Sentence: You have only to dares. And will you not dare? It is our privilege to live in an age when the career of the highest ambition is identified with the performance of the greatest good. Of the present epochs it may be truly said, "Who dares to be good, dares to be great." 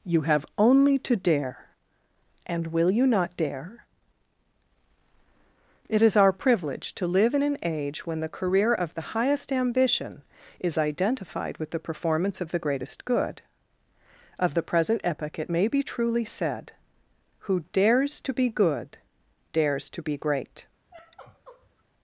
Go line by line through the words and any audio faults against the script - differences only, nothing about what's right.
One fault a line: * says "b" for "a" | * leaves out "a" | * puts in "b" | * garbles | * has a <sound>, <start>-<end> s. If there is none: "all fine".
* says "dare" for "dares"
* says "epoch" for "epochs"
* has a sigh, 20.9-21.8 s